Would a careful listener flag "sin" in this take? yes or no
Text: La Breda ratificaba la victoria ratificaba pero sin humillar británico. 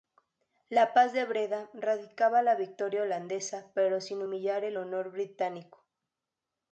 no